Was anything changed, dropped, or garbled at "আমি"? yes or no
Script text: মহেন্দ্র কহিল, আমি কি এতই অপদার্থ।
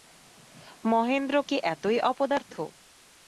yes